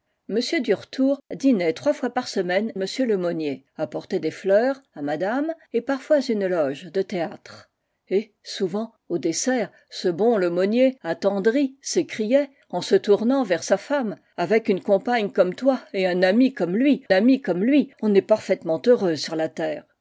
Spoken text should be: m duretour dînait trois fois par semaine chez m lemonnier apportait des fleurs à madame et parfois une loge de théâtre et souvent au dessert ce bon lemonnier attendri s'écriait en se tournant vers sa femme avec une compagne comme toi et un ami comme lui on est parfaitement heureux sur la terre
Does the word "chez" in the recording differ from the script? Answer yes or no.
yes